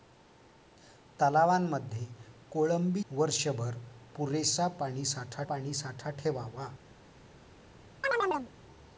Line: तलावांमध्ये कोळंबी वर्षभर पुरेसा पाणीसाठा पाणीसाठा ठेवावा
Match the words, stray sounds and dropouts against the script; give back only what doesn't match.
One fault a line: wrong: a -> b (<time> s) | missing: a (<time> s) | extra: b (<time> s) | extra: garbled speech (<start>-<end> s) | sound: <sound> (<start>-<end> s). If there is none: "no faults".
sound: chirp (8.0-8.5 s)